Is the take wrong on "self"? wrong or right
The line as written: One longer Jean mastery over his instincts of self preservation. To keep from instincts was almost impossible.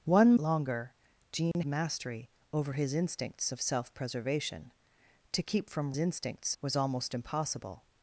right